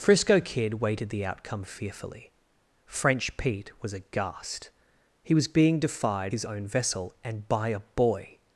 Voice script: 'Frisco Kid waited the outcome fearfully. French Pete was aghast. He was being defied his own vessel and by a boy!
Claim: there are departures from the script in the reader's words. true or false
false